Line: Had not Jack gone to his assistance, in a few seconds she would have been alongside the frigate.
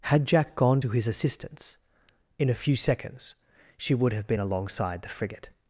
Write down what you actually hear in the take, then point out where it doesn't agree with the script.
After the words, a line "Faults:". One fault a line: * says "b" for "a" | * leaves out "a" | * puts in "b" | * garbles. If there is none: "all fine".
Had Jack gone to his assistance, in a few seconds she would have been alongside the frigate.
Faults:
* leaves out "not"